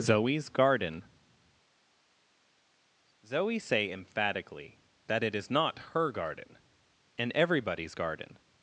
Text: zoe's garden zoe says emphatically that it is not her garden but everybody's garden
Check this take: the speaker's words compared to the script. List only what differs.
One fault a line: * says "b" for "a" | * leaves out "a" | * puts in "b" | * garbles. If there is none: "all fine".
* says "say" for "says"
* says "and" for "but"